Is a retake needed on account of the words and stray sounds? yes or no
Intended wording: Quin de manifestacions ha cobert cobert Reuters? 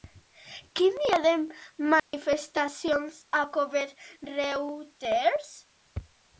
yes